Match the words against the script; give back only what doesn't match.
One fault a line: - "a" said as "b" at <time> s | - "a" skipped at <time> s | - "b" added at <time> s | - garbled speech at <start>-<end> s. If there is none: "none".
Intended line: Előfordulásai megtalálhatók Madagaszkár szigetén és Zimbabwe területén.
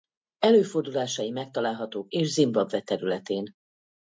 - "Madagaszkár szigetén" skipped at 2.1 s